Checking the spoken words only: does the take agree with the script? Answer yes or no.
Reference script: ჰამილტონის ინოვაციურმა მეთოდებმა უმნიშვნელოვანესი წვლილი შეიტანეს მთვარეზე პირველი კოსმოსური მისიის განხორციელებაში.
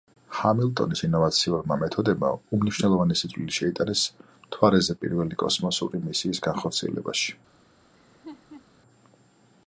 yes